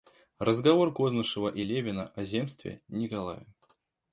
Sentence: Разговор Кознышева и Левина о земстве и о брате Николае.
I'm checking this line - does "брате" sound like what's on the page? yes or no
no